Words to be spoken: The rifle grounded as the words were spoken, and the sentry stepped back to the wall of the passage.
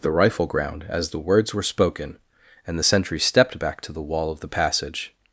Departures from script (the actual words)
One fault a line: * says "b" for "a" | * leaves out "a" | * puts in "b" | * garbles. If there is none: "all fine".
* says "ground" for "grounded"